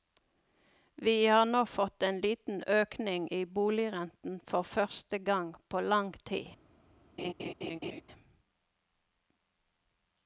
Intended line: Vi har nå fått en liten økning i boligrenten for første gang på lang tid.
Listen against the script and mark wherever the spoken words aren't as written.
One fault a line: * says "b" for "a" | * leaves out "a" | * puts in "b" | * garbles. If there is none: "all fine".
all fine